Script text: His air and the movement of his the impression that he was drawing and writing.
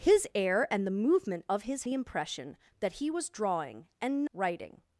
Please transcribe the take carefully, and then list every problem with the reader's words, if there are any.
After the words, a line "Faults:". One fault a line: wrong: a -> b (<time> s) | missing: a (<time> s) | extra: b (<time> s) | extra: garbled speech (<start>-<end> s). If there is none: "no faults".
His air and the movement of his the impression that he was drawing and writing.
Faults:
no faults